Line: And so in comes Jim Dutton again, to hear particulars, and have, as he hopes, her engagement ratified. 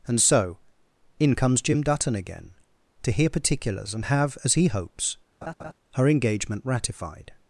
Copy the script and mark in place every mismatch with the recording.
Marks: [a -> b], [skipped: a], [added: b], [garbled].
And so in comes Jim Dutton again, to hear particulars, and have, as he hopes, her engagement ratified.